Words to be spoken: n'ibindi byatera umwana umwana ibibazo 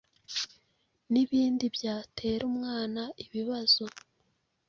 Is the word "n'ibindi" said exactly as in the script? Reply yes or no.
yes